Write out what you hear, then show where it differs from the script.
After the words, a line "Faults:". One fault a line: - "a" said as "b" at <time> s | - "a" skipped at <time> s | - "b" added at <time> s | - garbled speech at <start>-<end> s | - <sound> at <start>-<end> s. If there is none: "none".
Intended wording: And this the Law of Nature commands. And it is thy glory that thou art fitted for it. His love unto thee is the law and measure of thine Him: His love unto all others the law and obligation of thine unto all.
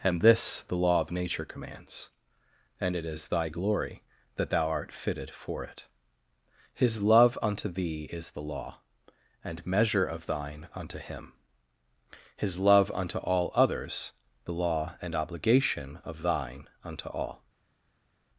And this the Law of Nature commands. And it is thy glory that thou art fitted for it. His love unto thee is the law and measure of thine unto Him: His love unto all others the law and obligation of thine unto all.
Faults:
- "unto" added at 10.7 s